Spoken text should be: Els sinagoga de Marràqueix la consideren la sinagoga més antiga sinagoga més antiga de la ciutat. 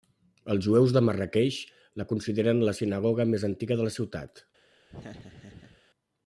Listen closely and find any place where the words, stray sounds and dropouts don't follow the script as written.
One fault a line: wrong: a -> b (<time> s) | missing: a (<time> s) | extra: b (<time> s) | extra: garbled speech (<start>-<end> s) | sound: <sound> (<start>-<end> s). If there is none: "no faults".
wrong: sinagoga -> jueus (0.7 s)
missing: sinagoga més antiga (3.8 s)
sound: laugh (4.9-5.8 s)